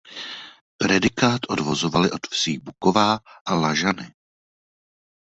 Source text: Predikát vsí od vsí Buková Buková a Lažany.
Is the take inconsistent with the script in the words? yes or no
yes